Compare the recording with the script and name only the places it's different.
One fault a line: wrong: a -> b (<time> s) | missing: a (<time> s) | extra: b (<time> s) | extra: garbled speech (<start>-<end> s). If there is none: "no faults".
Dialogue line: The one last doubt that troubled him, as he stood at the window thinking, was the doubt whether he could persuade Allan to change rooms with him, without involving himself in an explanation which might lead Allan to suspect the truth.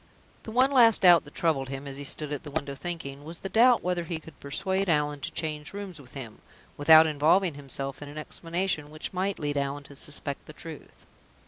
no faults